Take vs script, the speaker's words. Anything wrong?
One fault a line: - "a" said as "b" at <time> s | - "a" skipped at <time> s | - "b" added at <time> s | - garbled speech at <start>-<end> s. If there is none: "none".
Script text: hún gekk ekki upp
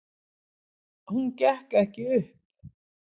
none